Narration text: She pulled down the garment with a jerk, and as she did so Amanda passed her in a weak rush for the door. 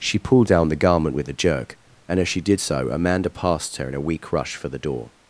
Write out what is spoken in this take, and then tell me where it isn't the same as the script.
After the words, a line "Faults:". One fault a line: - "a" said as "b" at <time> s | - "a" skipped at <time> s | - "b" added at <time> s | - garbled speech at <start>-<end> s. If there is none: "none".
She pulled down the garment with a jerk, and as she did so Amanda passed her in a weak rush for the door.
Faults:
none